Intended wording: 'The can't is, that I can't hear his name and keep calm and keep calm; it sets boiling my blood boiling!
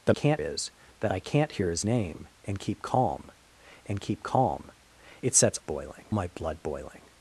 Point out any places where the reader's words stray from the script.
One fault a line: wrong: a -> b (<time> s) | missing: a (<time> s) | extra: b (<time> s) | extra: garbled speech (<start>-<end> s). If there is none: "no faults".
no faults